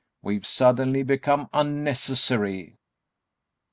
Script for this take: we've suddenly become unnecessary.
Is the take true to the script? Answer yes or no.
yes